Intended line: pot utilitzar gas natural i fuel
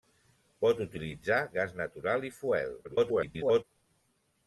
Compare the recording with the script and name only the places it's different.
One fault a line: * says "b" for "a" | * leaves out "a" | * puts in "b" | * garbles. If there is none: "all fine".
* garbles